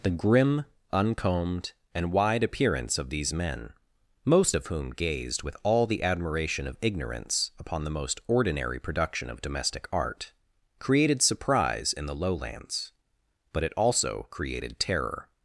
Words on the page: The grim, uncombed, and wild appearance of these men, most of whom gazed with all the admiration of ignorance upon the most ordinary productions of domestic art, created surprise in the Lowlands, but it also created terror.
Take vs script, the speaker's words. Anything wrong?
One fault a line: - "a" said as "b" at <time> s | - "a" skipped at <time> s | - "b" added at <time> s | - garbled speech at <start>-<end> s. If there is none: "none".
- "wild" said as "wide" at 2.1 s
- "productions" said as "production" at 8.8 s